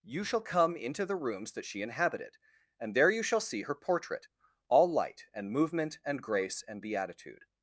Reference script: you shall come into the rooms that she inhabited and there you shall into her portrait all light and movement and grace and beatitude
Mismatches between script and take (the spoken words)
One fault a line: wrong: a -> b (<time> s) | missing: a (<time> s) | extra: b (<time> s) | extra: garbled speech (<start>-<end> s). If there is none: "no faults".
wrong: into -> see (3.4 s)